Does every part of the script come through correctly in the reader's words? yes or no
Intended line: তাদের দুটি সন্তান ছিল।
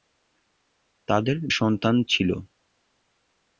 no